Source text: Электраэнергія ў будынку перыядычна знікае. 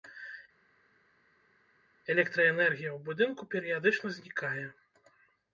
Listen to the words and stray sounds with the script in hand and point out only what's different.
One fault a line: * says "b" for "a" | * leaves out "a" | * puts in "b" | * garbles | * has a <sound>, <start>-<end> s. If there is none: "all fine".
all fine